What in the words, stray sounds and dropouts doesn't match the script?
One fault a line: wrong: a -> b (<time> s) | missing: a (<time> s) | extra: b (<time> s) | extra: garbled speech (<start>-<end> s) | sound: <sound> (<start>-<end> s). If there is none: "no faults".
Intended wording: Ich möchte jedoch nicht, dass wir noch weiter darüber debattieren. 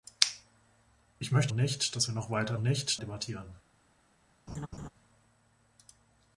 missing: jedoch (1.5 s)
wrong: darüber -> nicht (2.6 s)
sound: laugh (4.5-4.9 s)